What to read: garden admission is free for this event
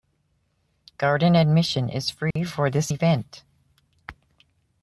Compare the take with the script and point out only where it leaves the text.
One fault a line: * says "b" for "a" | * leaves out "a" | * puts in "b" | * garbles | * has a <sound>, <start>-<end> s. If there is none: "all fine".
* has a dropout, 2.3-2.4 s